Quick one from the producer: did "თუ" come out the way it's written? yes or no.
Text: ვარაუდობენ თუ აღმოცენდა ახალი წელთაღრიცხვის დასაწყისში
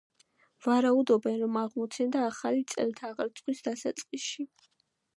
no